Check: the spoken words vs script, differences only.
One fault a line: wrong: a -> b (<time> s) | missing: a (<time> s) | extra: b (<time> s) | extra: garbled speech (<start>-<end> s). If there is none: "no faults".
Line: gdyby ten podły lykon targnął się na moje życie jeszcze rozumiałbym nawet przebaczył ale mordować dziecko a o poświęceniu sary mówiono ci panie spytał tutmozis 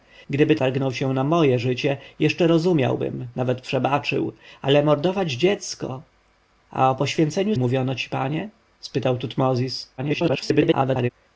missing: ten podły lykon (0.6 s)
missing: sary (7.5 s)
extra: garbled speech (10.0-11.1 s)